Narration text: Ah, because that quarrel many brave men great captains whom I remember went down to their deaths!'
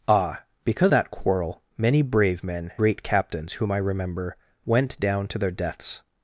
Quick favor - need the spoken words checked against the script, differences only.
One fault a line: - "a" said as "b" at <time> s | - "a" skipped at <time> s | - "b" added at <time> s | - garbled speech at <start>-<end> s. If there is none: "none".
none